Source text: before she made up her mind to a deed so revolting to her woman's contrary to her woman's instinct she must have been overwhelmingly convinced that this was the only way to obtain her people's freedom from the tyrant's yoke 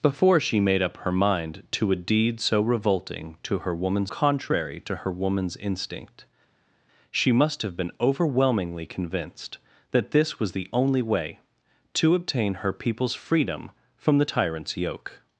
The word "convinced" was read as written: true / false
true